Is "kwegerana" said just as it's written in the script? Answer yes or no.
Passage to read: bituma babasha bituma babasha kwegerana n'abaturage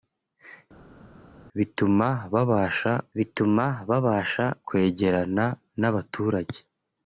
yes